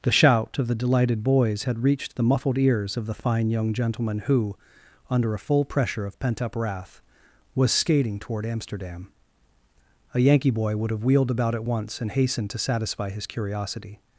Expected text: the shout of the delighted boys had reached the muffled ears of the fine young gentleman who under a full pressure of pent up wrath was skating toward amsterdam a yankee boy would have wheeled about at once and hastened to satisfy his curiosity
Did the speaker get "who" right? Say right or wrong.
right